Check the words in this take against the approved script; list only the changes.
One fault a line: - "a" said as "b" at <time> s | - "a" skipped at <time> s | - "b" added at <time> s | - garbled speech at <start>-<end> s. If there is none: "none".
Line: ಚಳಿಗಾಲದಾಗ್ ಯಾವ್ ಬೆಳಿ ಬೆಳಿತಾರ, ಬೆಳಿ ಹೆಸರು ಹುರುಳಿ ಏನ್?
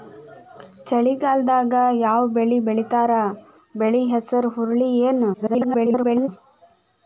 - garbled speech at 5.3-6.3 s